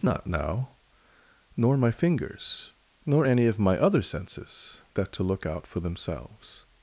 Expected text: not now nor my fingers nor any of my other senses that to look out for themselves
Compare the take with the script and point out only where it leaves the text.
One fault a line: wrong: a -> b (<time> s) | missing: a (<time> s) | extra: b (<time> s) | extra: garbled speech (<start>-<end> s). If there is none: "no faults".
no faults